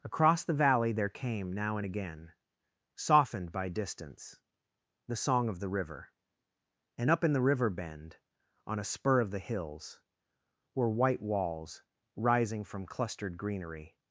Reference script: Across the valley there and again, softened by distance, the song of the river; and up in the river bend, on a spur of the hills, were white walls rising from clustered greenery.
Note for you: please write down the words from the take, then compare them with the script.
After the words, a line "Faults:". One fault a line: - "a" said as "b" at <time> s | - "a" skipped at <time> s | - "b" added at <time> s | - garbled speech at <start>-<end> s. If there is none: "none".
Across the valley there came now and again, softened by distance, the song of the river; and up in the river bend, on a spur of the hills, were white walls rising from clustered greenery.
Faults:
- "came now" added at 1.1 s